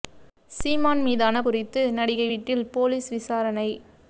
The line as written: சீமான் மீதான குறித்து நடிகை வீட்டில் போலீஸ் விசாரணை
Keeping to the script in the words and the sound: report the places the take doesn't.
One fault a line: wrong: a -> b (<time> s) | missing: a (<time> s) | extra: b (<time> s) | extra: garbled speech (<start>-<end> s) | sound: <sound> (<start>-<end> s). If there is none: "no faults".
no faults